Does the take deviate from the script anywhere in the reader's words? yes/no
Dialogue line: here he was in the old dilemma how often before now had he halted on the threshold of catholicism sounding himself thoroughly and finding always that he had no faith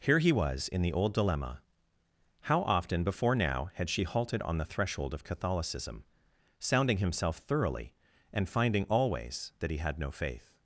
yes